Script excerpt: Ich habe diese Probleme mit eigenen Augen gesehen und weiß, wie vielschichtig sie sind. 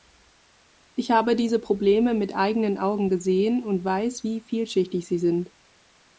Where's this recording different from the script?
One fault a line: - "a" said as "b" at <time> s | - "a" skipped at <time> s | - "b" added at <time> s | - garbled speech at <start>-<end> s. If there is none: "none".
none